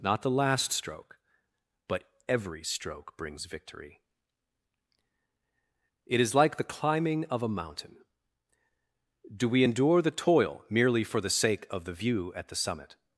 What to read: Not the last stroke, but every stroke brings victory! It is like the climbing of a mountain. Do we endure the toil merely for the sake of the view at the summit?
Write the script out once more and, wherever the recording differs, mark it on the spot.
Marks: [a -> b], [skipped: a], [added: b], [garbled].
Not the last stroke, but every stroke brings victory! It is like the climbing of a mountain. Do we endure the toil merely for the sake of the view at the summit?